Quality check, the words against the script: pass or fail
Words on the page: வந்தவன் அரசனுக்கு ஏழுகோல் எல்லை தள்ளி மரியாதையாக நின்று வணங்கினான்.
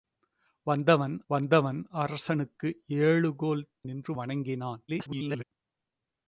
fail